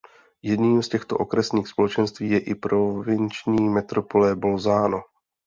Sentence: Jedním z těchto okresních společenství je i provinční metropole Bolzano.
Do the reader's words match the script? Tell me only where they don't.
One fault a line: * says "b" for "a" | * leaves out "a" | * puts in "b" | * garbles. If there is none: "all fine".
all fine